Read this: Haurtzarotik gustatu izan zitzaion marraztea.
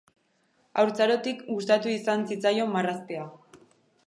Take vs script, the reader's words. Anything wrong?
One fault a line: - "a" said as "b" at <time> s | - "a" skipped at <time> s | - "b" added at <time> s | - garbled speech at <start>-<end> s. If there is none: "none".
none